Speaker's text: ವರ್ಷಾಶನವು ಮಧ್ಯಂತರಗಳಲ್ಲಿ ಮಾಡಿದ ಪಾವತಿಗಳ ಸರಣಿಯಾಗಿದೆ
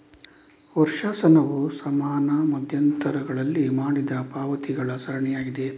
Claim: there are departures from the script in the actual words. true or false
true